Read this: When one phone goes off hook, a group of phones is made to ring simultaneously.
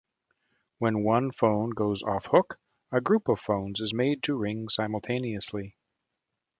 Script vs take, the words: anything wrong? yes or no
no